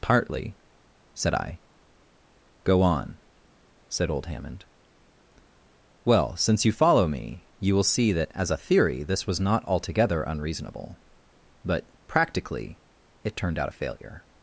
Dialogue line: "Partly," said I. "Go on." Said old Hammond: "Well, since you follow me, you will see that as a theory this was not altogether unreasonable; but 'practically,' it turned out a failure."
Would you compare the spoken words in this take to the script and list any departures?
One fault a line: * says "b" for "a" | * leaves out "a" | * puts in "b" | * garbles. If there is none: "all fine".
all fine